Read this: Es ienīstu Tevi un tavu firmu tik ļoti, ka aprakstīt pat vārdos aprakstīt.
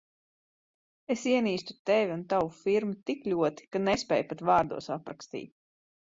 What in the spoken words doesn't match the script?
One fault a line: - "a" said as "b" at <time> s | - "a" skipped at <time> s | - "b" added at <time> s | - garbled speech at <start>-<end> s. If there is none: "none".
- "aprakstīt" said as "nespēju" at 3.9 s